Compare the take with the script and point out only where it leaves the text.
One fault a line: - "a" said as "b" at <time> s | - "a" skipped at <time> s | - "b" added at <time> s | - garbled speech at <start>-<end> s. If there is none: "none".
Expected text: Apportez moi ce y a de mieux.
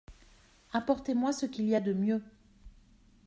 - "qu'il" added at 1.4 s